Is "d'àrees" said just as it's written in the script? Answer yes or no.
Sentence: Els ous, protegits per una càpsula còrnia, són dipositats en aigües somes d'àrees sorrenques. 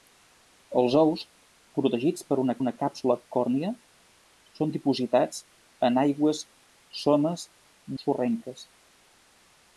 no